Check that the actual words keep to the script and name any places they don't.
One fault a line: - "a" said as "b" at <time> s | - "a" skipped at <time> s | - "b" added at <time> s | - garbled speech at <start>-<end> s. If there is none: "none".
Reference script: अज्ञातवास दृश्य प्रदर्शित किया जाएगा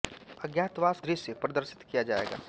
none